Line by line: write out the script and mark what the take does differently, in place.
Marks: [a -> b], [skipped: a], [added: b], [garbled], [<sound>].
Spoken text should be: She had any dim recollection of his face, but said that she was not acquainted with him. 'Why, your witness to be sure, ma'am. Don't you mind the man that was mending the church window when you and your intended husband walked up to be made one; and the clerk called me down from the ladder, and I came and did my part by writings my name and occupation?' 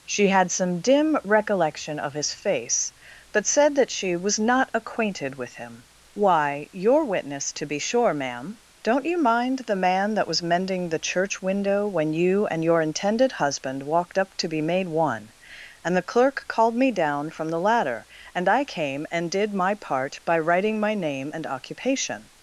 She had [any -> some] dim recollection of his face, but said that she was not acquainted with him. 'Why, your witness to be sure, ma'am. Don't you mind the man that was mending the church window when you and your intended husband walked up to be made one; and the clerk called me down from the ladder, and I came and did my part by [writings -> writing] my name and occupation?'